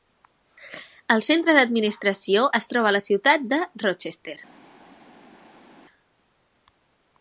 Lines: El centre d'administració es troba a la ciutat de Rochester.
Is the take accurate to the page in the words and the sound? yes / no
yes